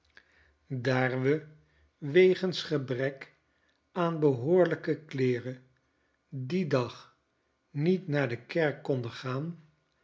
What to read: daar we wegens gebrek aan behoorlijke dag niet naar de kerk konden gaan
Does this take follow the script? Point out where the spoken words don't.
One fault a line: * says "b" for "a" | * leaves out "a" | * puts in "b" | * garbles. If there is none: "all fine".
* puts in "kleeren dien"